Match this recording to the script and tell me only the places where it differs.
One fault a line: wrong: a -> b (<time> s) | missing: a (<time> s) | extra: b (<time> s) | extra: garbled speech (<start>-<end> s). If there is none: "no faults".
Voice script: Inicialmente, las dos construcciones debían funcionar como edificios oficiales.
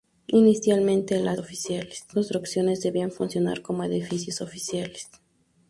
wrong: dos -> oficiales (1.4 s)